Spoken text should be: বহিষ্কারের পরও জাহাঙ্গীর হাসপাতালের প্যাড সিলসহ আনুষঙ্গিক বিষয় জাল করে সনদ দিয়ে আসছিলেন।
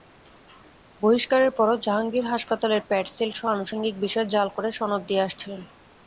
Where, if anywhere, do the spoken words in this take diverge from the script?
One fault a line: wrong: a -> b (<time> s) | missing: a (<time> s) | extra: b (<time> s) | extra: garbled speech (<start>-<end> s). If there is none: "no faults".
no faults